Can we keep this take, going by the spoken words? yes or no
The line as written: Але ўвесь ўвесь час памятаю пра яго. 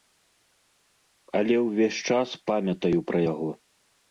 no